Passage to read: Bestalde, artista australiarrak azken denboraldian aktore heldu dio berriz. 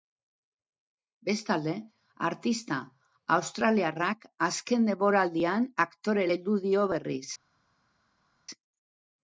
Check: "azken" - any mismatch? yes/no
no